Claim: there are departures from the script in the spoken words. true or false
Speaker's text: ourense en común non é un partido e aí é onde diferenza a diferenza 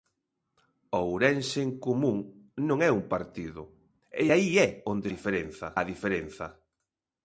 false